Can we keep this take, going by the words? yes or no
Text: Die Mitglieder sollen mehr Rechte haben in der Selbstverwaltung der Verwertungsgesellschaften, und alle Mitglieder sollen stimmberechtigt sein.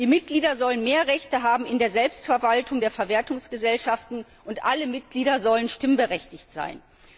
yes